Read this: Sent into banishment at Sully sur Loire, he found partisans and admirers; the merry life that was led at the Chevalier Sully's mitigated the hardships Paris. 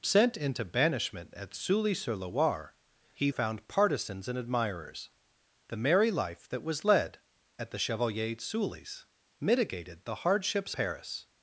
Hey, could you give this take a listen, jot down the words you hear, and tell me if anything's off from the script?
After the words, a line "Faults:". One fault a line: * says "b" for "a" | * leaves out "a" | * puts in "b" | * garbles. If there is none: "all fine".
Sent into banishment at Sully sur Loire, he found partisans and admirers; the merry life that was led at the Chevalier Sully's mitigated the hardships Paris.
Faults:
all fine